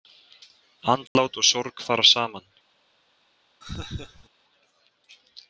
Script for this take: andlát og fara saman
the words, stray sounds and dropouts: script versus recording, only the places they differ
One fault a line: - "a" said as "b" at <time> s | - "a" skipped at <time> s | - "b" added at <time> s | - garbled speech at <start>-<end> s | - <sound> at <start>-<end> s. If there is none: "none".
- dropout at 1.1-1.2 s
- "sorg" added at 1.5 s
- laugh at 3.6-4.3 s